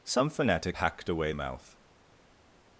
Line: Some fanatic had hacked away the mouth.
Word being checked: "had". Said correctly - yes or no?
no